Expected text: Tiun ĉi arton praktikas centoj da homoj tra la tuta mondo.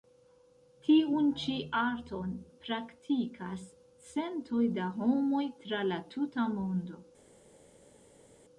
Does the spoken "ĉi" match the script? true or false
true